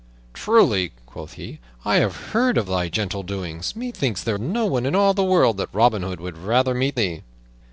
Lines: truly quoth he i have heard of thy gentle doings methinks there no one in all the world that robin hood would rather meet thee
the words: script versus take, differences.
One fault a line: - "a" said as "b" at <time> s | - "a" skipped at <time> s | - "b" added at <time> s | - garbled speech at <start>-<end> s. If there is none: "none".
none